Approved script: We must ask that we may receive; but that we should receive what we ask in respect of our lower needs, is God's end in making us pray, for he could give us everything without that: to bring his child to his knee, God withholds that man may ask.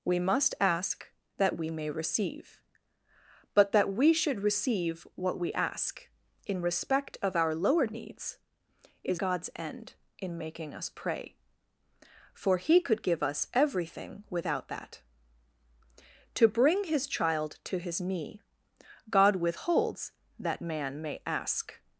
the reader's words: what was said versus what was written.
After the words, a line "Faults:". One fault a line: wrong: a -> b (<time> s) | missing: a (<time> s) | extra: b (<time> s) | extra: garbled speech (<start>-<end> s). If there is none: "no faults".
We must ask that we may receive; but that we should receive what we ask in respect of our lower needs, is God's end in making us pray, for he could give us everything without that: to bring his child to his knee, God withholds that man may ask.
Faults:
no faults